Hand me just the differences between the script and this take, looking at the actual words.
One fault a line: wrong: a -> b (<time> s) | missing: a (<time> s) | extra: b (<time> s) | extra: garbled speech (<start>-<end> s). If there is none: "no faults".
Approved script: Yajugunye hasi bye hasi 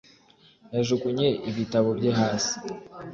wrong: hasi -> ibitabo (1.5 s)